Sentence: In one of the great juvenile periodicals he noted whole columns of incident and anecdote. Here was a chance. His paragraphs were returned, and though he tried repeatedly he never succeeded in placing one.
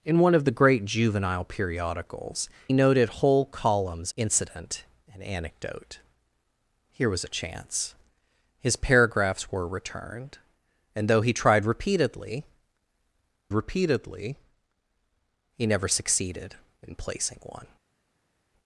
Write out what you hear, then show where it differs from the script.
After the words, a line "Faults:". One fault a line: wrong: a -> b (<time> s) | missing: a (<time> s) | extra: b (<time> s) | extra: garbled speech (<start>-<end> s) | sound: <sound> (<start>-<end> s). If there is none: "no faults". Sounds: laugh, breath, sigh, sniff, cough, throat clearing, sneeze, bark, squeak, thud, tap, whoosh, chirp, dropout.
In one of the great juvenile periodicals noted whole columns incident and anecdote. Here was a chance. His paragraphs were returned, and though he tried repeatedly repeatedly he never succeeded in placing one.
Faults:
missing: he (2.5 s)
missing: of (4.1 s)
extra: repeatedly (13.5 s)